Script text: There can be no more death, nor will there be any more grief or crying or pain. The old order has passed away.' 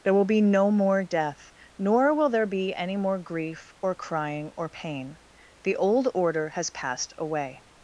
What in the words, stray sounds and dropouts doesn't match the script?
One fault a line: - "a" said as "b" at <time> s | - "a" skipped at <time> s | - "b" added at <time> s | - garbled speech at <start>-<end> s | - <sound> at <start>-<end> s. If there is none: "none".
- "can" said as "will" at 0.1 s